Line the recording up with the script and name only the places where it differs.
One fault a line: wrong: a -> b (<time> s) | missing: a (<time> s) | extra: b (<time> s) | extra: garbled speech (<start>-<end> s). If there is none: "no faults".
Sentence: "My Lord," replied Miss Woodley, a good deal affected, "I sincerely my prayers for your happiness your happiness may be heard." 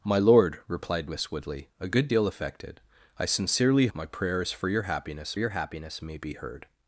no faults